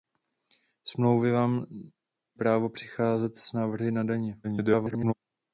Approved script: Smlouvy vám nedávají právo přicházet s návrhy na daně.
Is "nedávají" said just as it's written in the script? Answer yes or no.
no